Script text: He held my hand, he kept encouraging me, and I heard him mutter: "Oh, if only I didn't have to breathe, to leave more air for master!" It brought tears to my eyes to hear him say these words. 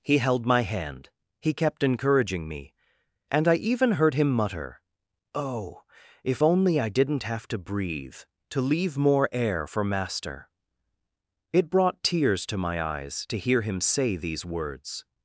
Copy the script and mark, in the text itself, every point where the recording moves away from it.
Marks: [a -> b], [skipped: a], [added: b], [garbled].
He held my hand, he kept encouraging me, and I [added: even] heard him mutter: "Oh, if only I didn't have to breathe, to leave more air for master!" It brought tears to my eyes to hear him say these words.